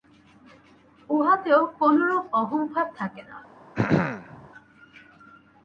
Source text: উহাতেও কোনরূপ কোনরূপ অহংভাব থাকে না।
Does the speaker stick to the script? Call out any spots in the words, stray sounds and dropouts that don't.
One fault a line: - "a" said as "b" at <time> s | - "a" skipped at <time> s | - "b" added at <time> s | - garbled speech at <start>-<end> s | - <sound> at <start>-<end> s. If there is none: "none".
- "কোনরূপ" skipped at 2.2 s
- throat clearing at 3.8-4.5 s